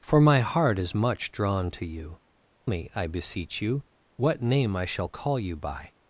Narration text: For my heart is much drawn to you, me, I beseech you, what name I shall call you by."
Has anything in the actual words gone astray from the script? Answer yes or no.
no